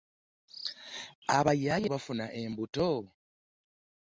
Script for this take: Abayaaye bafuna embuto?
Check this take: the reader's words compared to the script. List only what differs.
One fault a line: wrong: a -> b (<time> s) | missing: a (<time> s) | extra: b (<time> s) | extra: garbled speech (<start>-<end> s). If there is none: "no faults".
no faults